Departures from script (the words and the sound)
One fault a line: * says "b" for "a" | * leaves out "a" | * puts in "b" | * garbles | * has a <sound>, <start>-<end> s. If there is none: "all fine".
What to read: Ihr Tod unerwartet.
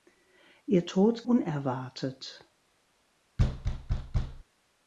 * has a thud, 3.4-4.4 s